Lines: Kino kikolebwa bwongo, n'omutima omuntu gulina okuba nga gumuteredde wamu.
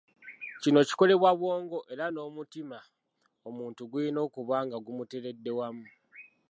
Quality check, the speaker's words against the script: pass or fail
fail